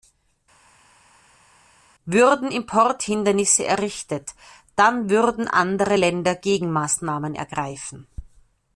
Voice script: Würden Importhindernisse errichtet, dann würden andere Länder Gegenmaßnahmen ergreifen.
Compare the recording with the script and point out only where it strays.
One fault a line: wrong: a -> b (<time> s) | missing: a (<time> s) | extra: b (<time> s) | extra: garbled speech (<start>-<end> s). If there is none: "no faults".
no faults